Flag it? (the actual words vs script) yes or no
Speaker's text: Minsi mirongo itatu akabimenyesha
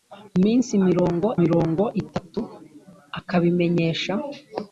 yes